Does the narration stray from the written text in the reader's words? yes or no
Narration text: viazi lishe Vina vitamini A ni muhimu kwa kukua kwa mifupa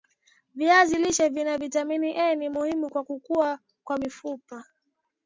no